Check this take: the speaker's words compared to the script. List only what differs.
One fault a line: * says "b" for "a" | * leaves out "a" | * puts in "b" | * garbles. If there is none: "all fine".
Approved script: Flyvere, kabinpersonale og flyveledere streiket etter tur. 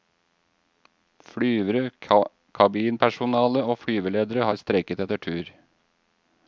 * puts in "har"